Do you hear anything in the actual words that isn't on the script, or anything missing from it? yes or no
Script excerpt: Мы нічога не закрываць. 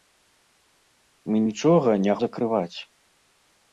no